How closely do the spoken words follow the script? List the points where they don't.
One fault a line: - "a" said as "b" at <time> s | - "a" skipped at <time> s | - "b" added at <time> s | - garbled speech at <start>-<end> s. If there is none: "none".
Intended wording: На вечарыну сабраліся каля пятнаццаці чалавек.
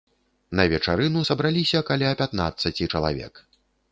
none